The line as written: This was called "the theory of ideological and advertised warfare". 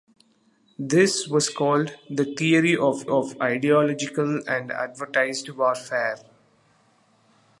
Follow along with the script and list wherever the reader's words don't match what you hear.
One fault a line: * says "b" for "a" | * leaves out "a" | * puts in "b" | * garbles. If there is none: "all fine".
* puts in "of"